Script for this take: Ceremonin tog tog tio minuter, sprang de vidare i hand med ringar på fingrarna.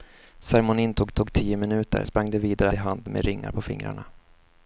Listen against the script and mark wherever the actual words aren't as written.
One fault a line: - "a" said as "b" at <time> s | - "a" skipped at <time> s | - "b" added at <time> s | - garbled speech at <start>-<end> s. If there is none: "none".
none